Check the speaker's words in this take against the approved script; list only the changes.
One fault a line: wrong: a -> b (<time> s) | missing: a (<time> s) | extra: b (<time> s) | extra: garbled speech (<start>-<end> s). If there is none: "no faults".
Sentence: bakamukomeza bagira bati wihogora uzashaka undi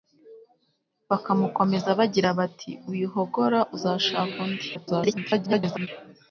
extra: garbled speech (4.7-5.9 s)